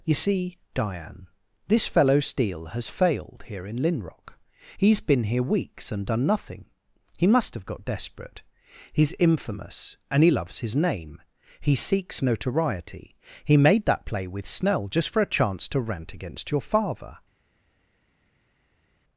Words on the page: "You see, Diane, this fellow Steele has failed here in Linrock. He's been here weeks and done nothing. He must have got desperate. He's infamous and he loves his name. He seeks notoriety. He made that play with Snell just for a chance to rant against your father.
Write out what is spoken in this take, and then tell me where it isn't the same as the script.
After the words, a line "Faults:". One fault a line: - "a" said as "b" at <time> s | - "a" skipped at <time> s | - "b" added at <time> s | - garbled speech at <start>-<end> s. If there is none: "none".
"You see, Diane, this fellow Steele has failed here in Linrock. He's been here weeks and done nothing. He must have got desperate. He's infamous and he loves his name. He seeks notoriety. He made that play with Snell just for a chance to rant against your father.
Faults:
none